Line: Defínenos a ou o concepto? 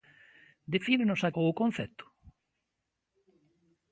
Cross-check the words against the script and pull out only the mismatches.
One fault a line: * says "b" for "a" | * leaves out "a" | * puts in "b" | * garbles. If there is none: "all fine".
all fine